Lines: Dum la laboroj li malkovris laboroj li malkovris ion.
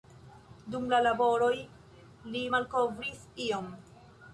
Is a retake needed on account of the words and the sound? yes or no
yes